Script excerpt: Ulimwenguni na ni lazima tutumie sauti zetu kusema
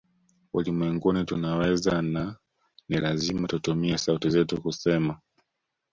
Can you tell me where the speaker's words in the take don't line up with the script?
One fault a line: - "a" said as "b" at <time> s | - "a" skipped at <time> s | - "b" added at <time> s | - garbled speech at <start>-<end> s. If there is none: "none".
- "tunaweza" added at 1.2 s